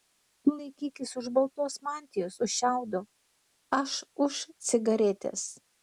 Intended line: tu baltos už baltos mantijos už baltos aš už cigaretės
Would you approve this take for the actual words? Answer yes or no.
no